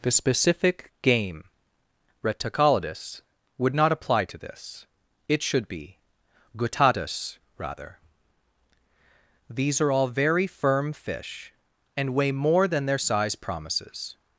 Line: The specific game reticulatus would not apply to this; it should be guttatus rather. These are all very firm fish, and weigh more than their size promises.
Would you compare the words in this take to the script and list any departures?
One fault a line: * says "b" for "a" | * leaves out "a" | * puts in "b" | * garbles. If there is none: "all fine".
all fine